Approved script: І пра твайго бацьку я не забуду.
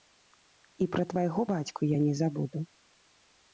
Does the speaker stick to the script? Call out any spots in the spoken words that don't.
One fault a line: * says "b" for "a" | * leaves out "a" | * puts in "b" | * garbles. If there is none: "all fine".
all fine